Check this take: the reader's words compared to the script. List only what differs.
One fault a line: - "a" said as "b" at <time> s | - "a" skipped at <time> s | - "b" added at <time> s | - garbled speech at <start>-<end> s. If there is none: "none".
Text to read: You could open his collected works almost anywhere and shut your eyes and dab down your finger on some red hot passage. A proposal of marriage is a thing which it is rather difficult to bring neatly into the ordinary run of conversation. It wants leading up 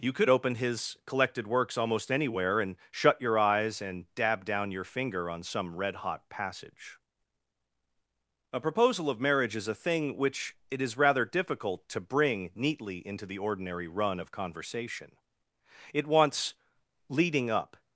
none